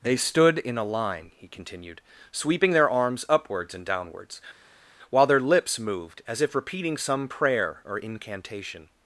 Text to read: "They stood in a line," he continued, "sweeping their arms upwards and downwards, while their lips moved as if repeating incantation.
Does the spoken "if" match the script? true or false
true